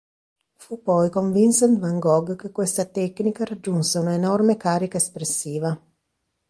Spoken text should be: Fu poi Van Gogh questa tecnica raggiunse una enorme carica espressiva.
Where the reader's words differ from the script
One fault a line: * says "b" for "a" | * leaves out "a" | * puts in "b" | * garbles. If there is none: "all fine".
* puts in "con Vincent"
* puts in "che"